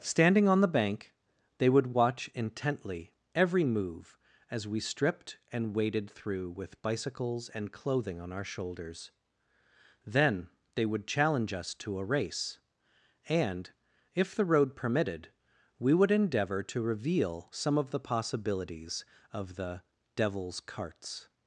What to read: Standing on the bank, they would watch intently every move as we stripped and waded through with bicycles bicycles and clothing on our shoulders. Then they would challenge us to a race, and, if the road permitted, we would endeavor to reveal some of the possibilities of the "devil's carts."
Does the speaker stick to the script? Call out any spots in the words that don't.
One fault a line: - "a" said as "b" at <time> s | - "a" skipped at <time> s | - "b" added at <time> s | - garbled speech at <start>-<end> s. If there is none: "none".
- "bicycles" skipped at 7.5 s